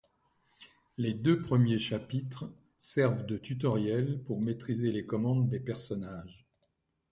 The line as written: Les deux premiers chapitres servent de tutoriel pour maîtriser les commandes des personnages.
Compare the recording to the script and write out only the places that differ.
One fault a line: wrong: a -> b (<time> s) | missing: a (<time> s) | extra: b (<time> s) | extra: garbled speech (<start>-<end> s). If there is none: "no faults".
no faults